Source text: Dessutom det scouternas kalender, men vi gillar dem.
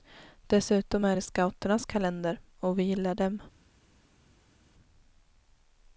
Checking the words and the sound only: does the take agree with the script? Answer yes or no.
no